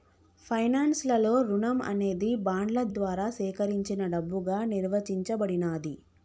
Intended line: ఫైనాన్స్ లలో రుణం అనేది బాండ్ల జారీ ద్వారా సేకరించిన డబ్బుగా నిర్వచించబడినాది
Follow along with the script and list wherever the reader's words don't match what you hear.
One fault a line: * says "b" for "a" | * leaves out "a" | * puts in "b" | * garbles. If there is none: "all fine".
* leaves out "జారీ"